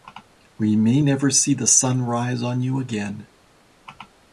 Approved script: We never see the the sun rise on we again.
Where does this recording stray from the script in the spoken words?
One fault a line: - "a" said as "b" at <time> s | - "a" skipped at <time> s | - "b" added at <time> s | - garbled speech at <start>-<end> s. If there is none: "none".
- "may" added at 0.8 s
- "the" skipped at 1.7 s
- "we" said as "you" at 2.6 s